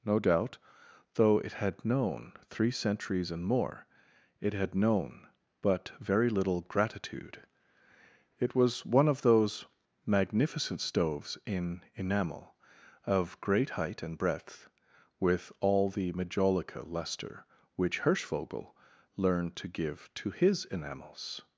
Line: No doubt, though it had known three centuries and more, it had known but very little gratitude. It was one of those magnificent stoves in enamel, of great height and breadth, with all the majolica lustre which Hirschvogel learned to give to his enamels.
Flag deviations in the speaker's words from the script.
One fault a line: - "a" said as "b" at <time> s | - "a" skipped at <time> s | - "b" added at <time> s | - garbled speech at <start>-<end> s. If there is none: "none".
none